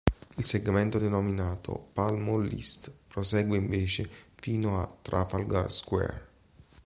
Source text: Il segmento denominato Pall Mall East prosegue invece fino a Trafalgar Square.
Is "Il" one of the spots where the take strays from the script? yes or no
no